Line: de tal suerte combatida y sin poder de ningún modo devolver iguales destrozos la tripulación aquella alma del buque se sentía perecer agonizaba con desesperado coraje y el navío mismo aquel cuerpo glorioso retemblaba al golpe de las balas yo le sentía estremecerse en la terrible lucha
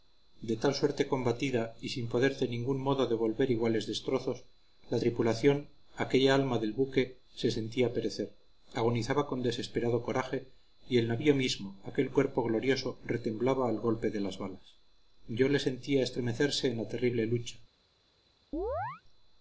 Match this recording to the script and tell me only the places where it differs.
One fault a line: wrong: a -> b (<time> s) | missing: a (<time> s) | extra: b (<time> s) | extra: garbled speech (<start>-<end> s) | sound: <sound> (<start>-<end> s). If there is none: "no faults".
sound: chirp (18.5-19.0 s)